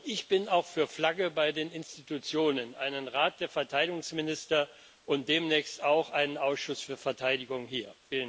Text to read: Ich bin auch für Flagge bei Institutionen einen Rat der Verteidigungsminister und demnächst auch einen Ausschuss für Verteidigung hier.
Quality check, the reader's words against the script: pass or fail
fail